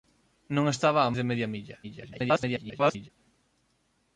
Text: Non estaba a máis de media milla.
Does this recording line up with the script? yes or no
no